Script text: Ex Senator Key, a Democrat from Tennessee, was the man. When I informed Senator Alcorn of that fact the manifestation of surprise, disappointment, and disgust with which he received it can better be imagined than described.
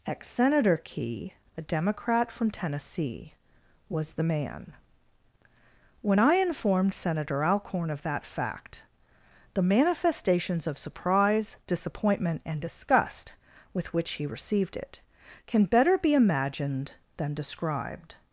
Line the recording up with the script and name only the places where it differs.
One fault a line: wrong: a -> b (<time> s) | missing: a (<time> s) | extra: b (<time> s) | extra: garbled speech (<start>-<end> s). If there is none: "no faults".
wrong: manifestation -> manifestations (9.6 s)